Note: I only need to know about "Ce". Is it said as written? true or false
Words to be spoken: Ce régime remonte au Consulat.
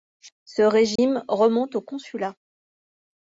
true